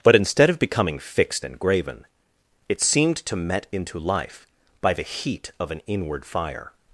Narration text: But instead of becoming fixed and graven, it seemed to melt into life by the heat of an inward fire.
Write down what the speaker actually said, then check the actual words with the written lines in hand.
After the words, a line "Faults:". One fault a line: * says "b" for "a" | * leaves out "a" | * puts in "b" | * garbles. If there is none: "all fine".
But instead of becoming fixed and graven, it seemed to met into life by the heat of an inward fire.
Faults:
* says "met" for "melt"